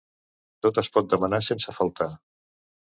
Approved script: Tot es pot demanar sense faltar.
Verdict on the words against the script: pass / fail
pass